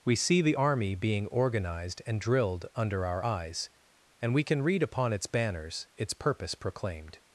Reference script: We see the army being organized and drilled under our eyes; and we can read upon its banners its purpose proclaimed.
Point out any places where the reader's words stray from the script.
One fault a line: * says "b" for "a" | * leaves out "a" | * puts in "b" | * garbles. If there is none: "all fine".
all fine